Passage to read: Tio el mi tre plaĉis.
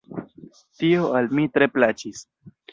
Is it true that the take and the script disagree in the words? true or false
true